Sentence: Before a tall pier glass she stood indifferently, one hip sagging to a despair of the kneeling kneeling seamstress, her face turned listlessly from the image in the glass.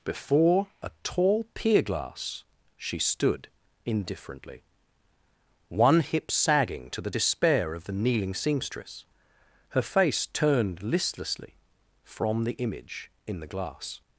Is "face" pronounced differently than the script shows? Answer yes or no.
no